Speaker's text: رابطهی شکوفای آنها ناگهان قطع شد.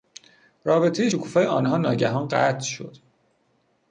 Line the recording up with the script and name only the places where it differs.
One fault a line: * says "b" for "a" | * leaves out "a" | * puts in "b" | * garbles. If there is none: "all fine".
all fine